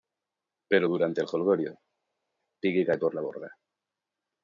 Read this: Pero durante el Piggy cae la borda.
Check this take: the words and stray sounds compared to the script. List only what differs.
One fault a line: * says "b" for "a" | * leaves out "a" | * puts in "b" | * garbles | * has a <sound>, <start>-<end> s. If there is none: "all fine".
* puts in "jolgorio"
* puts in "por"